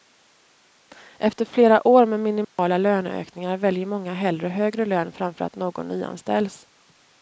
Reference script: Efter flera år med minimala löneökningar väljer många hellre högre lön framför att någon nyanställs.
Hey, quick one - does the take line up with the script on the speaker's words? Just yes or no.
yes